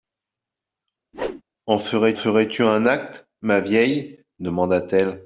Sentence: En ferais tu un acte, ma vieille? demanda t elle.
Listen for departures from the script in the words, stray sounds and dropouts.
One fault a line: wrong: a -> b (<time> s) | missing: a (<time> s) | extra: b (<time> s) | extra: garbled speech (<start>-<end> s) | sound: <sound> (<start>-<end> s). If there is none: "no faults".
sound: whoosh (1.1-1.4 s)
extra: ferais (2.1 s)